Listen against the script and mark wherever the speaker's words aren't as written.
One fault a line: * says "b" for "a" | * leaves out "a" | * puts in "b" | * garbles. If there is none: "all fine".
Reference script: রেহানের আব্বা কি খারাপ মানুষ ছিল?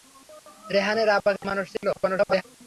* leaves out "খারাপ"
* garbles